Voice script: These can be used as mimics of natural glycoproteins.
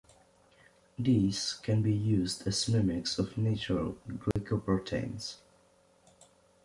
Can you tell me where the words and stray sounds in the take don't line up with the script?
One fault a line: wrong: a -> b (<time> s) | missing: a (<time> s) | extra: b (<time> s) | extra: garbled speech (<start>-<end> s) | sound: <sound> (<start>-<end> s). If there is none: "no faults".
sound: dropout (4.3-4.4 s)